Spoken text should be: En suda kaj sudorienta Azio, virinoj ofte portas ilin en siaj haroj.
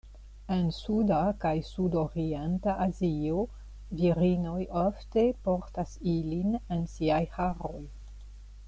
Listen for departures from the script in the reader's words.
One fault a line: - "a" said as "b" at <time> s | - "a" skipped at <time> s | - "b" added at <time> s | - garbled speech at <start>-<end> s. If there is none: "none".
none